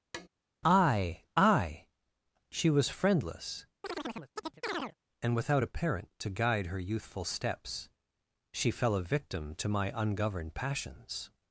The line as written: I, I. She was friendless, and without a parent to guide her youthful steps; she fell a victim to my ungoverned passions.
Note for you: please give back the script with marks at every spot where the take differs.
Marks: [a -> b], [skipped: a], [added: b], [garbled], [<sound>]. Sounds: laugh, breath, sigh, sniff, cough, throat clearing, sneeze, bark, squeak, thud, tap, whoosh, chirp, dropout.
[tap] I, I. She was friendless, [chirp] and without a parent to guide her youthful steps; she fell a victim to my ungoverned passions.